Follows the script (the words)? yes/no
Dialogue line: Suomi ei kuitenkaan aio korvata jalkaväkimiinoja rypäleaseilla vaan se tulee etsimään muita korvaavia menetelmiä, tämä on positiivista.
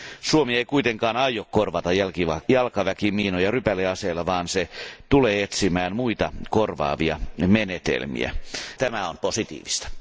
yes